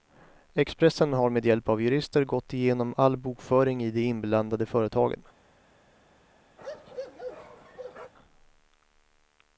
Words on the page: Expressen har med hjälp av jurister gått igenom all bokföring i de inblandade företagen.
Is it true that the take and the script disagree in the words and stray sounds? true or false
true